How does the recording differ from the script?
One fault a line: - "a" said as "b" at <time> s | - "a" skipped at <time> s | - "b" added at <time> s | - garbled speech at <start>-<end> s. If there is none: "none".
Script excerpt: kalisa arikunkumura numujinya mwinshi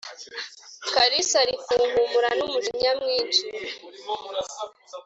none